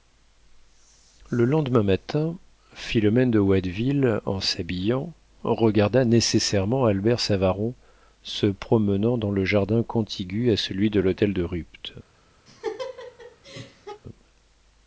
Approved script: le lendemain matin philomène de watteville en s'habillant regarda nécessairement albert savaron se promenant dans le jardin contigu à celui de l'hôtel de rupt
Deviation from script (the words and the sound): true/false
true